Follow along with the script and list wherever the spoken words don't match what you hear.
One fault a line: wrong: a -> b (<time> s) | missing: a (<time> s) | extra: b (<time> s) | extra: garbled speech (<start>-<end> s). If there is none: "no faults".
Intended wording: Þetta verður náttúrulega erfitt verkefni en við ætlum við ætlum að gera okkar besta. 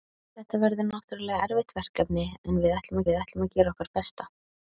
no faults